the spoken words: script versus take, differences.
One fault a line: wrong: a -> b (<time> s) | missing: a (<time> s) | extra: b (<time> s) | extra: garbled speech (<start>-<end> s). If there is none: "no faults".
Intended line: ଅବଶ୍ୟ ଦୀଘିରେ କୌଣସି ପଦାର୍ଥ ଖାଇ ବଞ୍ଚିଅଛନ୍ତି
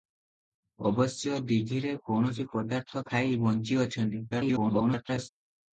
extra: garbled speech (4.3-5.3 s)